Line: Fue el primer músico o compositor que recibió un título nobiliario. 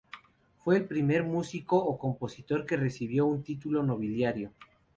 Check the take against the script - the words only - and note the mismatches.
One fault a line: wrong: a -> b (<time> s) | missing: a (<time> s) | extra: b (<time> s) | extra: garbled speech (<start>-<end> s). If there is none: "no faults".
no faults